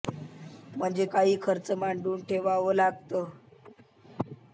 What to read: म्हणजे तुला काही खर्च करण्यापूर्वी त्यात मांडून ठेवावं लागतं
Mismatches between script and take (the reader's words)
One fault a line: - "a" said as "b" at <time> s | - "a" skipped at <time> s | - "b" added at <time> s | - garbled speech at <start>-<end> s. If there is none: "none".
- "तुला" skipped at 1.1 s
- "करण्यापूर्वी त्यात" skipped at 1.7 s